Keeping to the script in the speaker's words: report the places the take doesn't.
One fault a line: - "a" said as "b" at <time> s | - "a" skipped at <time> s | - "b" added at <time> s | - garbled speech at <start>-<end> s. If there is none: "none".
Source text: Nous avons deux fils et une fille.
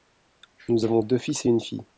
none